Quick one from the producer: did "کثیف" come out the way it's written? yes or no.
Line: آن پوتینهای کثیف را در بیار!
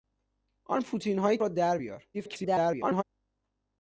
no